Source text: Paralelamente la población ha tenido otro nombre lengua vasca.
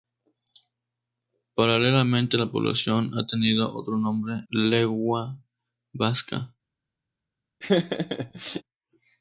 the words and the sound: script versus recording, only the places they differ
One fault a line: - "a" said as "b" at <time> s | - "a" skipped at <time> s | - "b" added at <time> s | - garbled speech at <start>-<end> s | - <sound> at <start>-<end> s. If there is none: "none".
- laugh at 7.6-8.6 s